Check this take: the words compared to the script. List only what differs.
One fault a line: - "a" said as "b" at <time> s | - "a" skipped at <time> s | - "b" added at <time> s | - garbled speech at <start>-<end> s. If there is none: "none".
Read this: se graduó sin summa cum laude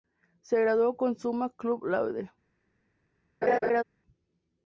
- "sin" said as "con" at 0.9 s